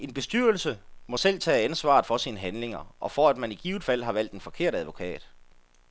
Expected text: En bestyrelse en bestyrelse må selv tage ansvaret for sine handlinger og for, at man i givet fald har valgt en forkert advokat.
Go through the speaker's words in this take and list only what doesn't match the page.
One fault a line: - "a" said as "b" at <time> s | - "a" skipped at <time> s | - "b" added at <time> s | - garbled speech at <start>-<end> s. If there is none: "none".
- "en bestyrelse" skipped at 0.8 s